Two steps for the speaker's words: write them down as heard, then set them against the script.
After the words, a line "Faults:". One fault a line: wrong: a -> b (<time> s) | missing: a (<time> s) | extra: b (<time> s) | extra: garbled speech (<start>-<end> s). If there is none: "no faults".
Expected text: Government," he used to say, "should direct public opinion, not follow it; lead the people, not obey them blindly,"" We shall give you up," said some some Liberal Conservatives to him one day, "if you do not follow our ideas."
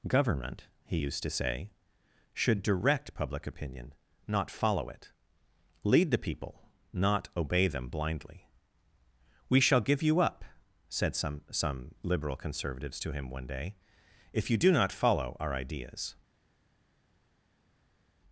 Government," he used to say, "should direct public opinion, not follow it; lead the people, not obey them blindly,"" We shall give you up," said some some Liberal Conservatives to him one day, "if you do not follow our ideas."
Faults:
no faults